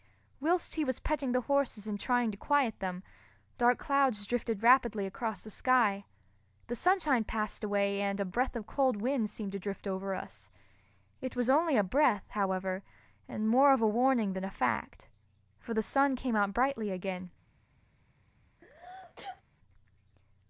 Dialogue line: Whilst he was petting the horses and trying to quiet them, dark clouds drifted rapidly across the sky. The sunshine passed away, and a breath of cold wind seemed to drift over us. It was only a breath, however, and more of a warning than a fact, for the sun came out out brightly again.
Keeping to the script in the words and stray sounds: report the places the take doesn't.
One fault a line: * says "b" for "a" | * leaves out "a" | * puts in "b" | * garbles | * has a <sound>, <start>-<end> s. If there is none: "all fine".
* leaves out "out"
* has a sneeze, 18.6-19.4 s